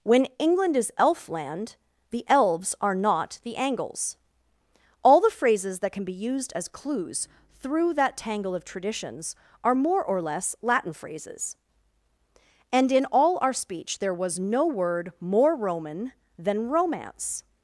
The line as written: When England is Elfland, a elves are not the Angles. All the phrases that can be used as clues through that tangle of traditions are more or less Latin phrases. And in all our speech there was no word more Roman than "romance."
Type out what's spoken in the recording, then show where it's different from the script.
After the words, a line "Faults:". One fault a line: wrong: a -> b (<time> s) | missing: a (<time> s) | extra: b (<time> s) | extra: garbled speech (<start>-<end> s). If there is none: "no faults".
When England is Elfland, the elves are not the Angles. All the phrases that can be used as clues through that tangle of traditions are more or less Latin phrases. And in all our speech there was no word more Roman than "romance."
Faults:
wrong: a -> the (2.1 s)